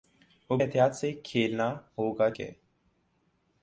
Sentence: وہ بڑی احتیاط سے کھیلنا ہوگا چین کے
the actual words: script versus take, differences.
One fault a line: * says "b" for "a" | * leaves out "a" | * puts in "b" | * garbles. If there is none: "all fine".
* leaves out "بڑی"
* leaves out "چین"